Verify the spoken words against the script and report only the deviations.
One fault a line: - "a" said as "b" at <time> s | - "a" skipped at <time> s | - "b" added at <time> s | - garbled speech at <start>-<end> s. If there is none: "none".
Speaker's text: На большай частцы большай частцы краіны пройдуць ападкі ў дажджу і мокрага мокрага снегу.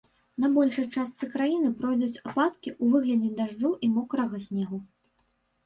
- "большай частцы" skipped at 1.3 s
- "выглядзе" added at 3.0 s
- "мокрага" skipped at 4.4 s